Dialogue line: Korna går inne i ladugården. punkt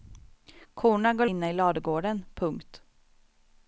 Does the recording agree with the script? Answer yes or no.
yes